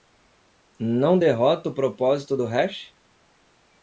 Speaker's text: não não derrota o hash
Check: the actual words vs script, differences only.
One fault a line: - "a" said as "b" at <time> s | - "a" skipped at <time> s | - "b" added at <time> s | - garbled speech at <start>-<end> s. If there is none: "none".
- "não" skipped at 1.2 s
- "propósito do" added at 1.7 s